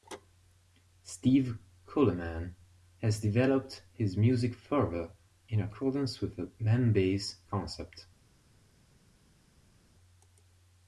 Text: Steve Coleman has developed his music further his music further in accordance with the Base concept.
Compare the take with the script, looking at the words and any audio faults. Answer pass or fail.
fail